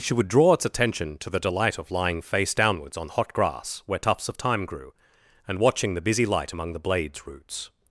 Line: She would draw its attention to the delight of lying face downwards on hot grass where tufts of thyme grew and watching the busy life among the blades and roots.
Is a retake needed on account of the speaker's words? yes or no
yes